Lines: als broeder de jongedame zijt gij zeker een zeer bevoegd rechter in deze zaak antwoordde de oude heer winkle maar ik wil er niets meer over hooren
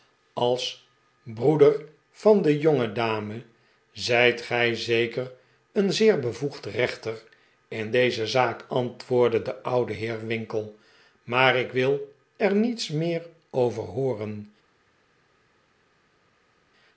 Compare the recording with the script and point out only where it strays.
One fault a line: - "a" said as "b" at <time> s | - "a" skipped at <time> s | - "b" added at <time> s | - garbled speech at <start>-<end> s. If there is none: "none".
- "van" added at 2.1 s